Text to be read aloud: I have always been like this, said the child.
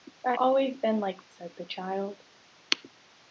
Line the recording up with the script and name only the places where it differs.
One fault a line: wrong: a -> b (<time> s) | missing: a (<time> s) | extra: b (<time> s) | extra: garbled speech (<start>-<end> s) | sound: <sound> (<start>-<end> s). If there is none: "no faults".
missing: have (0.3 s)
missing: this (1.2 s)